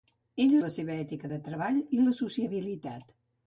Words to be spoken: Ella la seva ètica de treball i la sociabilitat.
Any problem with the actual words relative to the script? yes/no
no